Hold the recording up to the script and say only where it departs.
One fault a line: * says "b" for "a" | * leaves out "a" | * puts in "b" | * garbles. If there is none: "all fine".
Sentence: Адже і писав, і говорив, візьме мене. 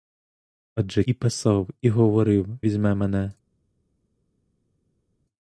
all fine